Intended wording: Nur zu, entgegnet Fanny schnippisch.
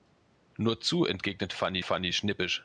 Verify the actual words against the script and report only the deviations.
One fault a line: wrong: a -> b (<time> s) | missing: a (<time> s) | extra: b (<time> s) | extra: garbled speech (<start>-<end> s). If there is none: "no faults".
extra: Fanny (1.8 s)